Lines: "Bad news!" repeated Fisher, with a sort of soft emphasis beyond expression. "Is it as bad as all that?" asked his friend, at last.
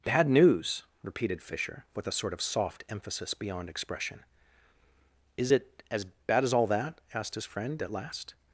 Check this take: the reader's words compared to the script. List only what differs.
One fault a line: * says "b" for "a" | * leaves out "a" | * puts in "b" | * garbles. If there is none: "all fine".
all fine